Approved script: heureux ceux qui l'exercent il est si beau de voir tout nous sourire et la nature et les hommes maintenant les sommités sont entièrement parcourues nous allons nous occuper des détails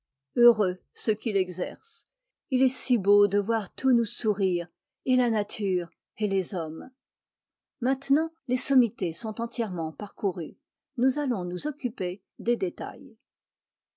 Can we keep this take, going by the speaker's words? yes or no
yes